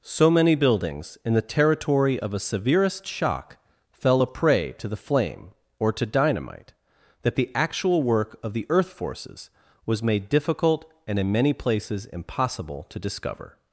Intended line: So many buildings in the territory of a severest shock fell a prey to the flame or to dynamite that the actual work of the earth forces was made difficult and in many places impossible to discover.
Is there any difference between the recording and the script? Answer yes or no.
no